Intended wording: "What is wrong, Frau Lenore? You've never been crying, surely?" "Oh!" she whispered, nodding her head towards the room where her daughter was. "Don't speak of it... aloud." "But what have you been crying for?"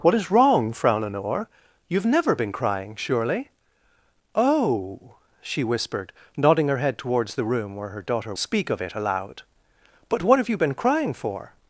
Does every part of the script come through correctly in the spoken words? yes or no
no